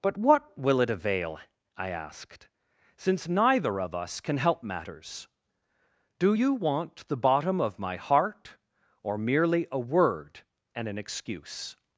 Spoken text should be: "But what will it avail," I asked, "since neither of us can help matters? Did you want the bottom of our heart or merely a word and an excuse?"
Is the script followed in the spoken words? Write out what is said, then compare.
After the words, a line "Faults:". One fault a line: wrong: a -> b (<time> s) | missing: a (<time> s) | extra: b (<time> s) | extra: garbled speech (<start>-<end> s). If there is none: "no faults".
"But what will it avail," I asked, "since neither of us can help matters? Do you want the bottom of my heart or merely a word and an excuse?"
Faults:
wrong: Did -> Do (6.2 s)
wrong: our -> my (7.8 s)